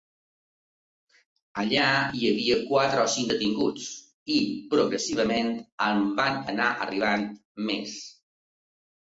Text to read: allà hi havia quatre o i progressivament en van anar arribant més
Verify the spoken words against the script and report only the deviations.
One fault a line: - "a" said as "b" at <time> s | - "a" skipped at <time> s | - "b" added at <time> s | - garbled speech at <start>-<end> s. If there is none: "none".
- "cinc detinguts" added at 3.2 s